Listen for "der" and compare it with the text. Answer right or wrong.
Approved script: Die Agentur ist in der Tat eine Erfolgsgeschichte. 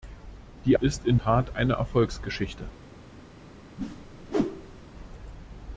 wrong